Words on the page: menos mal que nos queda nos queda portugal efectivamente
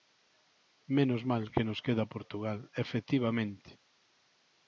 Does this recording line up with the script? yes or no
no